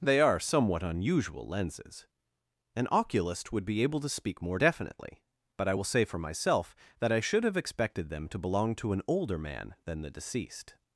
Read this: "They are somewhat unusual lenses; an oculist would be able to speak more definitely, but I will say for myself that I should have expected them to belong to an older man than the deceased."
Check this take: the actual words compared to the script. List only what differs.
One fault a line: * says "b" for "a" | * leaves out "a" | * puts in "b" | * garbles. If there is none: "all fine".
all fine